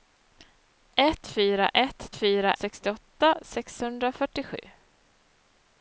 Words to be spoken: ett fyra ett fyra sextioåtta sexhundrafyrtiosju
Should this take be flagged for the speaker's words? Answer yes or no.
no